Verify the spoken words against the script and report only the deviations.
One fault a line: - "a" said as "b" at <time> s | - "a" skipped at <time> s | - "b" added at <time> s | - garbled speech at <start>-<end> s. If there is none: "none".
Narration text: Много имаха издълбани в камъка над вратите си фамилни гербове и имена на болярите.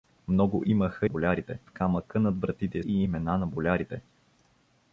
- "издълбани" said as "болярите" at 1.0 s
- "си фамилни гербове" skipped at 2.8 s